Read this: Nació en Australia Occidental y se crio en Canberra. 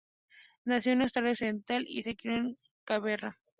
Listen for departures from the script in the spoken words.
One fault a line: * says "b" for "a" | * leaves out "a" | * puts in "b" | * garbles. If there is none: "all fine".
all fine